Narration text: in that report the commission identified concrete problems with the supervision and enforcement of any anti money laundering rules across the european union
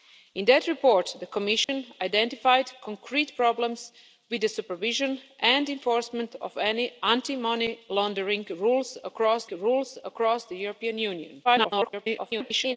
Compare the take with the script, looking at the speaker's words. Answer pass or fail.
fail